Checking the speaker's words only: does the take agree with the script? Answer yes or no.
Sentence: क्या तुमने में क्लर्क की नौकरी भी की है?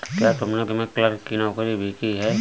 yes